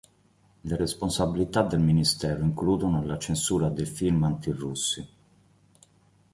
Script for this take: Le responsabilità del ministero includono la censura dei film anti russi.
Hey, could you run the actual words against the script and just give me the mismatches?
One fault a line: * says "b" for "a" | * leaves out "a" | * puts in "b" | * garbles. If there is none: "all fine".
all fine